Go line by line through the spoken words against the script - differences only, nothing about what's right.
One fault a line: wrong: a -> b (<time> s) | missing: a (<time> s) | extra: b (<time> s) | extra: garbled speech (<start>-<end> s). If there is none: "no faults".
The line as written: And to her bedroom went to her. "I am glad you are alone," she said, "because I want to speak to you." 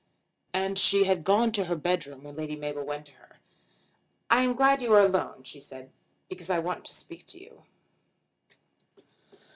extra: she had gone (0.8 s)
extra: when Lady Mabel (2.2 s)